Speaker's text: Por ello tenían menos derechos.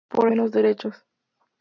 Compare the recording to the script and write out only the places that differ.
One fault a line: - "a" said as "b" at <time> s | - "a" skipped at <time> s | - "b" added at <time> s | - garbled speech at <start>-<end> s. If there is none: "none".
- "ello tenían" skipped at 0.3 s